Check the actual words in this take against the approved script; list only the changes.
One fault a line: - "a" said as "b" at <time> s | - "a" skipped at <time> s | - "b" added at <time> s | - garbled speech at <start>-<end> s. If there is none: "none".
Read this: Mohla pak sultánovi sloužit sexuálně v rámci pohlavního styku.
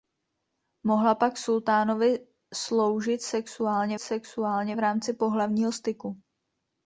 - "sexuálně" added at 4.0 s